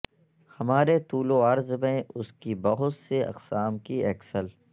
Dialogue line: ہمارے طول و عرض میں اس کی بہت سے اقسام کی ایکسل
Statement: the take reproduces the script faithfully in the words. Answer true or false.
true